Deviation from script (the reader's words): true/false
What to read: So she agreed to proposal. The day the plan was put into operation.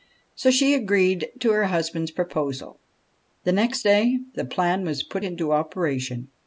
true